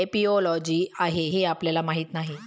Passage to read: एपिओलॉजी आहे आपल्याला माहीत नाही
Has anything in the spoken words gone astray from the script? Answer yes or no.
yes